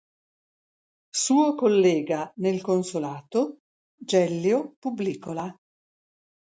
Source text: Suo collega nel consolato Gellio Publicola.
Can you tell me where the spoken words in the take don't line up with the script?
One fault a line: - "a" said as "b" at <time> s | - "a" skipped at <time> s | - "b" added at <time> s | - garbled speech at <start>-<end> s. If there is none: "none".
none